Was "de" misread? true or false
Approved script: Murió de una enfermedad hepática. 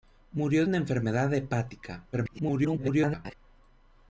true